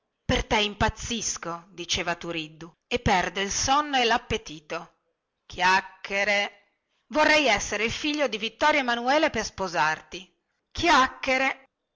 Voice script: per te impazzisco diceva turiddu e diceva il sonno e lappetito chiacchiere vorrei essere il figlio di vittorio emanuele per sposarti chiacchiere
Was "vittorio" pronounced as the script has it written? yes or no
yes